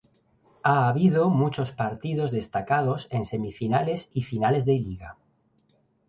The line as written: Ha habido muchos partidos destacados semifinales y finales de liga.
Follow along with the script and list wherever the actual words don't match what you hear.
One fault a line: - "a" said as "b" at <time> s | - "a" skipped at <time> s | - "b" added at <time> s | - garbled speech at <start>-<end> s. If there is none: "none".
- "en" added at 3.1 s